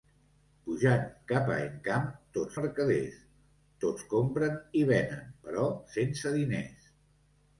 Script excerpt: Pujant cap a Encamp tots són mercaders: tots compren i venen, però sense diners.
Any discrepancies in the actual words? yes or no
yes